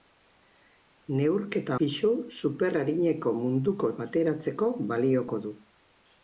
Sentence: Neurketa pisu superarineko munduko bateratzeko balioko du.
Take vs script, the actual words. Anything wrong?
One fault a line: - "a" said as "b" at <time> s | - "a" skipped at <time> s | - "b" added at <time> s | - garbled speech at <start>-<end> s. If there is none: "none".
none